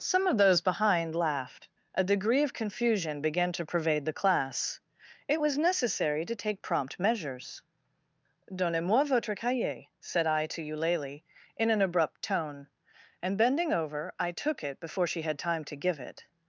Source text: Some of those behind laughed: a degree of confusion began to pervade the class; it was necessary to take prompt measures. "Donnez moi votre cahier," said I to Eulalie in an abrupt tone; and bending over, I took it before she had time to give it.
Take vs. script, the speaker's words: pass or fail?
pass